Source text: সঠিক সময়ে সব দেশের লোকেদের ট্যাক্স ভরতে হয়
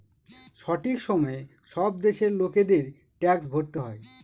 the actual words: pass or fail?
pass